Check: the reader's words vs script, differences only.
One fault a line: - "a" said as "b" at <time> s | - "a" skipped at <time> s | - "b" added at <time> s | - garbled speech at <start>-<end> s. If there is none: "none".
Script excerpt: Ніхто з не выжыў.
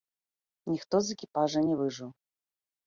- "экіпажа" added at 1.2 s